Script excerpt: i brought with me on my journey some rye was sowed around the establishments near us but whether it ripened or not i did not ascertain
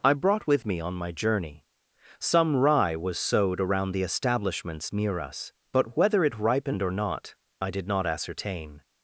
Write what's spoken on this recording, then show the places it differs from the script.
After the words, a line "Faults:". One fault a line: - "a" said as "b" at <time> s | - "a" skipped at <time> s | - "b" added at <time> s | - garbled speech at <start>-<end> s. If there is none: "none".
i brought with me on my journey some rye was sowed around the establishments near us but whether it ripened or not i did not ascertain
Faults:
none